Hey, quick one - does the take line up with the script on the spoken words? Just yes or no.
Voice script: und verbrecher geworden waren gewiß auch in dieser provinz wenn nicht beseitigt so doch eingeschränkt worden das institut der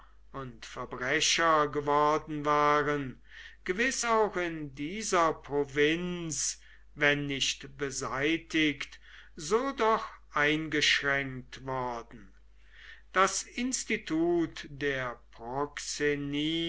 yes